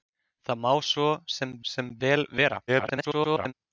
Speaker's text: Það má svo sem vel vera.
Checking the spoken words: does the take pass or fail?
fail